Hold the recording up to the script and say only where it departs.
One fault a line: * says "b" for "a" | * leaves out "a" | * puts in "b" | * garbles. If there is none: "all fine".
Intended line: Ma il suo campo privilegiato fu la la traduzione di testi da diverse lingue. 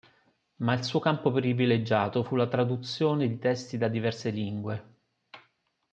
* leaves out "la"